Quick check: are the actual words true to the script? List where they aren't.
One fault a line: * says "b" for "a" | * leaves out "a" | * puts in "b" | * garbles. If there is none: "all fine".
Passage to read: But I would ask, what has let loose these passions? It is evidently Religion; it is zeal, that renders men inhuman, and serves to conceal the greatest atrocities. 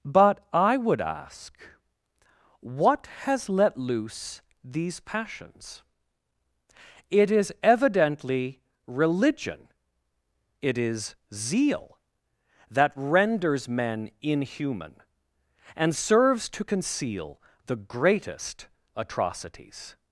all fine